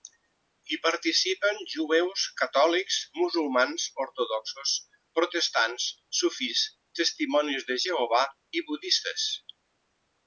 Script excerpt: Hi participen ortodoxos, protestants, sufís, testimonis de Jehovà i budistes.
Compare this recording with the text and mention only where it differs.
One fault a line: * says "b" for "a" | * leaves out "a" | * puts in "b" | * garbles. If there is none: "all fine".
* puts in "jueus catòlics musulmans"